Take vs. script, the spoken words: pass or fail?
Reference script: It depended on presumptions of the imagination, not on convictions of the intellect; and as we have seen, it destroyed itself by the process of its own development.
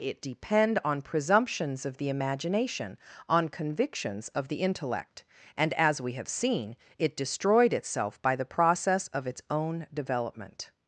fail